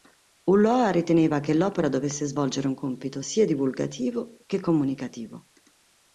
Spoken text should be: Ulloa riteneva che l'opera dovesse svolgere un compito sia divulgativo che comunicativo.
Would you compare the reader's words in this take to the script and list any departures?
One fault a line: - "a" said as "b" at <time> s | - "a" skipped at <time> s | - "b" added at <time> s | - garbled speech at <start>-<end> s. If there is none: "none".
none